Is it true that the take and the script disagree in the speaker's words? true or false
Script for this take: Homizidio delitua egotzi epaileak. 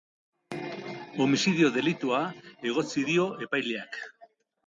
true